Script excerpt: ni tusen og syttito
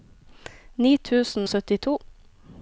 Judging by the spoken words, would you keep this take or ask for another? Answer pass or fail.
fail